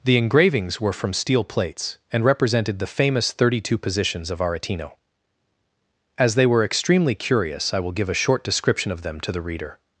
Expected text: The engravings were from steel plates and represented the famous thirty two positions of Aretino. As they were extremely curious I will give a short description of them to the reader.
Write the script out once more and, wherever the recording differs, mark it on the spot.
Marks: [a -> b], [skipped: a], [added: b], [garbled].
The engravings were from steel plates and represented the famous thirty two positions of Aretino. As they were extremely curious I will give a short description of them to the reader.